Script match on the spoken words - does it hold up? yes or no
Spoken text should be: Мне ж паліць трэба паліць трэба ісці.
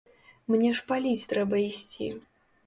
no